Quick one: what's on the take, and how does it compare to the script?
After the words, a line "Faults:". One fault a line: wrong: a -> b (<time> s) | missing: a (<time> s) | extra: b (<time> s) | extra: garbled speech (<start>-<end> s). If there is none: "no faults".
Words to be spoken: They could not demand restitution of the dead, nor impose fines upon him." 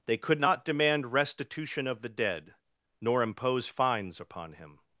They could not demand restitution of the dead, nor impose fines upon him."
Faults:
no faults